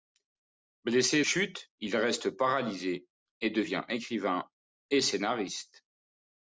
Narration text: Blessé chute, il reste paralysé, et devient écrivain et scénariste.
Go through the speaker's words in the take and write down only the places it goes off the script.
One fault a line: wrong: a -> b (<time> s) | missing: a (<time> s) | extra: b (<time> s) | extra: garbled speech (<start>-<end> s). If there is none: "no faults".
no faults